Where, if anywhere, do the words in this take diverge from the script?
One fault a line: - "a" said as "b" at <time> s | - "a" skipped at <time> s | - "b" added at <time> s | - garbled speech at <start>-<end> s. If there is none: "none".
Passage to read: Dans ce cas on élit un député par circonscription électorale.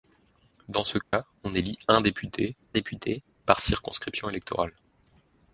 - "député" added at 2.7 s